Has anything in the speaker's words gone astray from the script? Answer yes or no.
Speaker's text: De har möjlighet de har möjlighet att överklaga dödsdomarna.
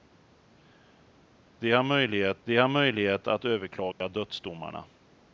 no